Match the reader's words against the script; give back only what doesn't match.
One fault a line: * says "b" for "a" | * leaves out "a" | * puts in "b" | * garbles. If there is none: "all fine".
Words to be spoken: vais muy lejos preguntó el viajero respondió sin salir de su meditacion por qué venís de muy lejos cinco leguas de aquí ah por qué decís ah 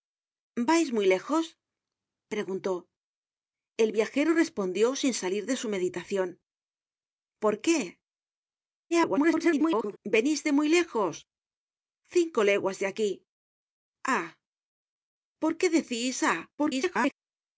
* garbles
* garbles